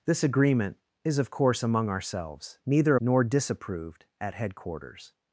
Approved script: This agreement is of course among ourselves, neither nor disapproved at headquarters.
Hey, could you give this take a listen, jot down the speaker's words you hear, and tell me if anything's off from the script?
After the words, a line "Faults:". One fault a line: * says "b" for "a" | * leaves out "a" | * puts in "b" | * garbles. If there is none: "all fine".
This agreement is of course among ourselves, neither nor disapproved at headquarters.
Faults:
all fine